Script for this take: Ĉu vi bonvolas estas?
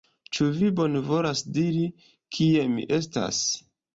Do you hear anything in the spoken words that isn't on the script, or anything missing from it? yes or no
yes